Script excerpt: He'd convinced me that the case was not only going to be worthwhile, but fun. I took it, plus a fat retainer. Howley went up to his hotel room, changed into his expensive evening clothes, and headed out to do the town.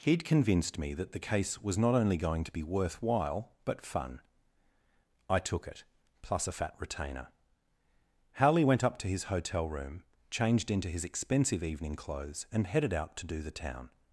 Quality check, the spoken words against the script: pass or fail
pass